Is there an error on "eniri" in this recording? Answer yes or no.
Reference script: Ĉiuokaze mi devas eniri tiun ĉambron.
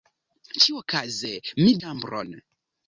yes